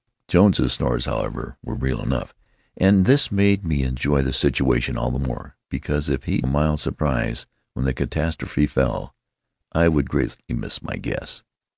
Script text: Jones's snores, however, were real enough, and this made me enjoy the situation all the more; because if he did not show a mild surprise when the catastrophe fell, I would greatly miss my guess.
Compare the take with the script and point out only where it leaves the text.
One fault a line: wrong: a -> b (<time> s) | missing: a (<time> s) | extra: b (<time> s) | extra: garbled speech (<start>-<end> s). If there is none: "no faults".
missing: did not show (6.4 s)